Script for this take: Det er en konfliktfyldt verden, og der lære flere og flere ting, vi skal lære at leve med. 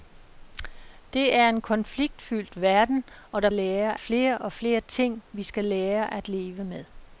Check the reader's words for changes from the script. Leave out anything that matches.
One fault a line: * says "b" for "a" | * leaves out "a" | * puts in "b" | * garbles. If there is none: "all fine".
all fine